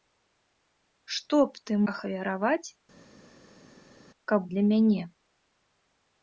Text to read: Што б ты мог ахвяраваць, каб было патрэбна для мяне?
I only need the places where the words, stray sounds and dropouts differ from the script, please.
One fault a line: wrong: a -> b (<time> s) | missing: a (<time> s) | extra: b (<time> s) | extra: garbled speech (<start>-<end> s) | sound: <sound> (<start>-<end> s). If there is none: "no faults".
missing: мог (1.7 s)
missing: было патрэбна (4.4 s)